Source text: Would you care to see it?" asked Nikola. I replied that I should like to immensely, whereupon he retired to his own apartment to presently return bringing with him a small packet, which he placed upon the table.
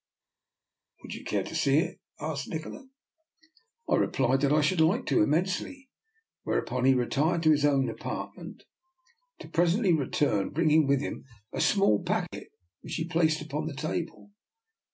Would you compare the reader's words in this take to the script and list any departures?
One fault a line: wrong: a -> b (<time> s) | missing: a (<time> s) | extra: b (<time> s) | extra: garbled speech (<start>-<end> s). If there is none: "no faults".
no faults